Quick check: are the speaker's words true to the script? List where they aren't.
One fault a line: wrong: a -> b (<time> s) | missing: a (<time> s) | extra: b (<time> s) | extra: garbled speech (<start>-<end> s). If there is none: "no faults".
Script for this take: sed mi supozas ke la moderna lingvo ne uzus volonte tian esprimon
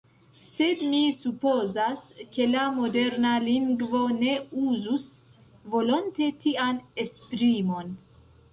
no faults